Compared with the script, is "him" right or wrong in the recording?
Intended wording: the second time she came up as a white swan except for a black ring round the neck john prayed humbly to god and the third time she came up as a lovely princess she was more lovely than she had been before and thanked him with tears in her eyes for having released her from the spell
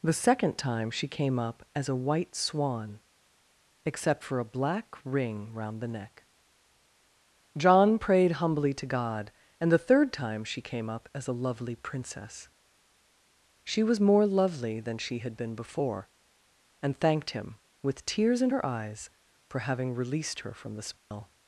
right